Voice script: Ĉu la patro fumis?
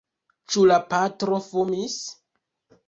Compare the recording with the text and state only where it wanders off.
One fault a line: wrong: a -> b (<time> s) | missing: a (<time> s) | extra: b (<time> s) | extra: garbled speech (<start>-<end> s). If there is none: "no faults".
no faults